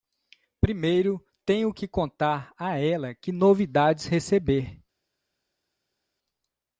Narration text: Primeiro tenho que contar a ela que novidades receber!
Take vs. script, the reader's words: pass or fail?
pass